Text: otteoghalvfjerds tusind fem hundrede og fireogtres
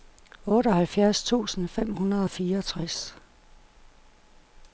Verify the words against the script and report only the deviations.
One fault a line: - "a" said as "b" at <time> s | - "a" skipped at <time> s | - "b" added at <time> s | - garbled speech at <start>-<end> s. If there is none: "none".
none